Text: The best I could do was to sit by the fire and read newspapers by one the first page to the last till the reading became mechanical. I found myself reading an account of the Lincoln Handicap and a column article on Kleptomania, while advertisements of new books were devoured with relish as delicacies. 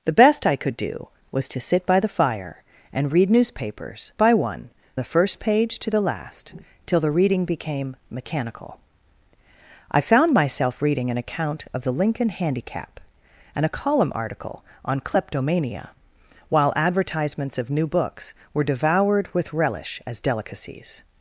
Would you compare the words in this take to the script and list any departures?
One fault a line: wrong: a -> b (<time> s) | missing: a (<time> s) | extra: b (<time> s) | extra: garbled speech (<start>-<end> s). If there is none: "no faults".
no faults